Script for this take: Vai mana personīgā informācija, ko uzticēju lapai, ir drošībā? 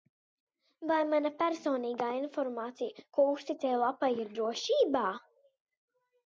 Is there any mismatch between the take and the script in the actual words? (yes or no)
no